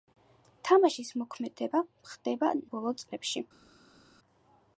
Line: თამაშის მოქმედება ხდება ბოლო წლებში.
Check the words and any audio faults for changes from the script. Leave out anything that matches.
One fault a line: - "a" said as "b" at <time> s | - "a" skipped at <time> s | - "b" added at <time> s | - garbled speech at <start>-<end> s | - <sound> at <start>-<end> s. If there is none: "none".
none